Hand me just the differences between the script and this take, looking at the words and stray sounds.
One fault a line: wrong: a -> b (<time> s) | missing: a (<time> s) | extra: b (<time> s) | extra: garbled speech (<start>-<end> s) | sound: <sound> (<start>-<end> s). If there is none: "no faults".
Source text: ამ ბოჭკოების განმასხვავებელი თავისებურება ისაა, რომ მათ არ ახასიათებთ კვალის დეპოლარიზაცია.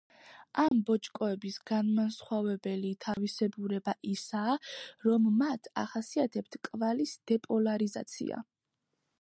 sound: dropout (0.7-0.7 s)
sound: dropout (3.1-3.2 s)
missing: არ (5.7 s)